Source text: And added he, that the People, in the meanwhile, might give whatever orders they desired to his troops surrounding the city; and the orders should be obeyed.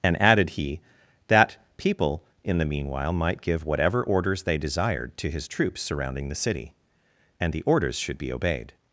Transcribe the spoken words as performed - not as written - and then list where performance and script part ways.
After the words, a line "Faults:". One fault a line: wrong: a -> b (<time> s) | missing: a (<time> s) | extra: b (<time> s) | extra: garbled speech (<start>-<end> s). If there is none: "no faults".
And added he, that People, in the meanwhile, might give whatever orders they desired to his troops surrounding the city; and the orders should be obeyed.
Faults:
missing: the (1.6 s)